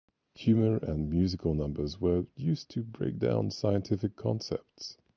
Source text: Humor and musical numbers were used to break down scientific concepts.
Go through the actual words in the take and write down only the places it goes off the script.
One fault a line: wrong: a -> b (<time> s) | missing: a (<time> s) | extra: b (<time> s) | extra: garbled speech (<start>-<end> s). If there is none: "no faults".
no faults